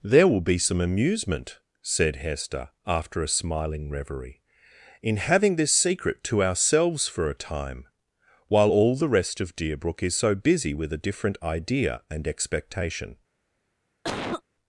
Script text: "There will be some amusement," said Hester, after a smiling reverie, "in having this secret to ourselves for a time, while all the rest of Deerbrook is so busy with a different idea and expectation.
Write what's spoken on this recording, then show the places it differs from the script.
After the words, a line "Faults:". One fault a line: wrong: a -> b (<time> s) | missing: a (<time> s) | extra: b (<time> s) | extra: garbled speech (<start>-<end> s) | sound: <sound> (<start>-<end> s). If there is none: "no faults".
"There will be some amusement," said Hester, after a smiling reverie, "in having this secret to ourselves for a time, while all the rest of Deerbrook is so busy with a different idea and expectation.
Faults:
sound: cough (14.0-14.4 s)